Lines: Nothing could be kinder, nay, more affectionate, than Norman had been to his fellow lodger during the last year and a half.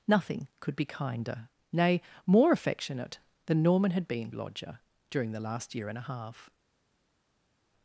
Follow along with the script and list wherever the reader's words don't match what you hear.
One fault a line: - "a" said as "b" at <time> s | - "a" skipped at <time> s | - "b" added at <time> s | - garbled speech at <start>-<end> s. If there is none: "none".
- "to his fellow" skipped at 4.3 s